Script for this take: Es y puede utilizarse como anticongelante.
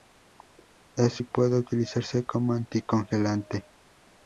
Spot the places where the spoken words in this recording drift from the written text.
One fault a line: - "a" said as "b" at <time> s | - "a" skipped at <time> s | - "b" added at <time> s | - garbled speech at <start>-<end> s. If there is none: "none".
none